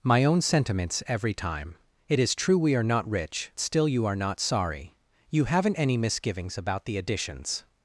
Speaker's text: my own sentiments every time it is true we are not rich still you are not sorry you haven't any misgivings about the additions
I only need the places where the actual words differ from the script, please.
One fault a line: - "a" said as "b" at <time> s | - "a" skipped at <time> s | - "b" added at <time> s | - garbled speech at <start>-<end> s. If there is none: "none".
none